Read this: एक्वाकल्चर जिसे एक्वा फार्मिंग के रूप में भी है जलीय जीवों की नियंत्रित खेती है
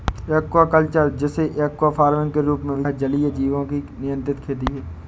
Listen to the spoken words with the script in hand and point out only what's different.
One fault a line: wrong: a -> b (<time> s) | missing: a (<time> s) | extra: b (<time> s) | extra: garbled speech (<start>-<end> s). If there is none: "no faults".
no faults